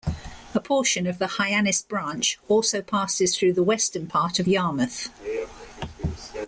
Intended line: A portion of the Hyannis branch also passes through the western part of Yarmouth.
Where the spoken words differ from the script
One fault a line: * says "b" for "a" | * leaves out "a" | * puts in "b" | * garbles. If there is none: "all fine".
all fine